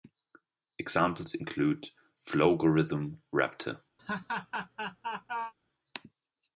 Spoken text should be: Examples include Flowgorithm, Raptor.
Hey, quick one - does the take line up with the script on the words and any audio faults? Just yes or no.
no